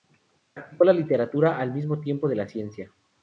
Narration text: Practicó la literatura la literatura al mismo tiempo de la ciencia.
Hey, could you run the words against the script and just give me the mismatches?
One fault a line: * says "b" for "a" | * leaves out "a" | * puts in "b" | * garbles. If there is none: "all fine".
* leaves out "la literatura"